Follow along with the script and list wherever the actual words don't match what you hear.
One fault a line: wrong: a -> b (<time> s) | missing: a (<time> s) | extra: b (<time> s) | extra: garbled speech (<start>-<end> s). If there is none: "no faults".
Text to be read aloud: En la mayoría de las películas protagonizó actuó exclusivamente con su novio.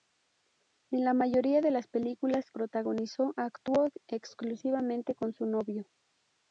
no faults